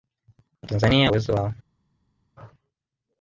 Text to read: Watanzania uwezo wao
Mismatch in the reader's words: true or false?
false